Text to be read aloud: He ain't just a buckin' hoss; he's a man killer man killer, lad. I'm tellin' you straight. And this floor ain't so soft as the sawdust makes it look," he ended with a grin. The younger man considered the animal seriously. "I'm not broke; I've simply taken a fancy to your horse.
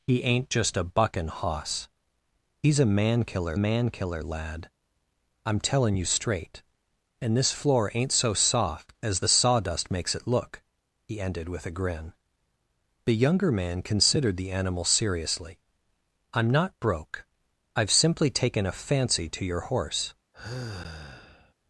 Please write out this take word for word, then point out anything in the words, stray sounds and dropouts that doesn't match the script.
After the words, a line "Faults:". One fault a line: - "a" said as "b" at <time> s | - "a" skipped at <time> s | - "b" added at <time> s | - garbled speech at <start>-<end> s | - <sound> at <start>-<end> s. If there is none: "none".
He ain't just a buckin' hoss; he's a man killer man killer, lad. I'm tellin' you straight. And this floor ain't so soft as the sawdust makes it look," he ended with a grin. The younger man considered the animal seriously. "I'm not broke; I've simply taken a fancy to your horse.
Faults:
- sigh at 20.3-21.5 s